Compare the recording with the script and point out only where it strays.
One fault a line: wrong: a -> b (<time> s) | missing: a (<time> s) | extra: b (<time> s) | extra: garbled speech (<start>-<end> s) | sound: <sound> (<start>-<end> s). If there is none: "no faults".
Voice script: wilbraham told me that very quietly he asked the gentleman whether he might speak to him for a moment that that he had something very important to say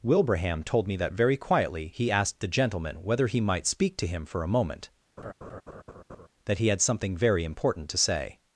sound: laugh (5.2-6.3 s)
missing: that (6.6 s)